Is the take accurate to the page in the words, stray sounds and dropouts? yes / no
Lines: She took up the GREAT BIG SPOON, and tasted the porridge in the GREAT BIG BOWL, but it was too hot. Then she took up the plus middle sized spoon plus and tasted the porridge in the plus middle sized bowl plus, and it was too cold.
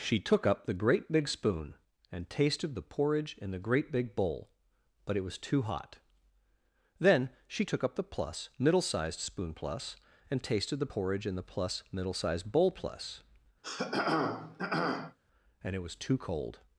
no